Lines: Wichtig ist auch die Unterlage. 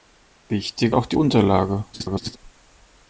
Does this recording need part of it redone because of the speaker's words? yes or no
yes